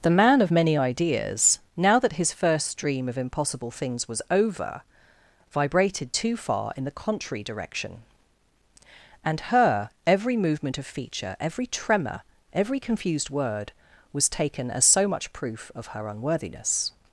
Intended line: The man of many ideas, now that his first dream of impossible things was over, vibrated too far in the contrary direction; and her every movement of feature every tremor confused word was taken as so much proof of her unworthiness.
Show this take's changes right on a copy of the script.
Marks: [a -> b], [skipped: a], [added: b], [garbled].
The man of many ideas, now that his first dream of impossible things was over, vibrated too far in the contrary direction; and her every movement of feature every tremor [added: every] confused word was taken as so much proof of her unworthiness.